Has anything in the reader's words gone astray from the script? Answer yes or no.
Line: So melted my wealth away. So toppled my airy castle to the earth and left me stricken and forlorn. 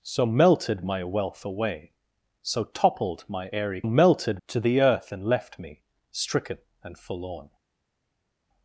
yes